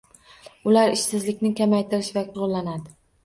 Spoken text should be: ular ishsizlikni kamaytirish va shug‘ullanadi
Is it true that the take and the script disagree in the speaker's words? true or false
false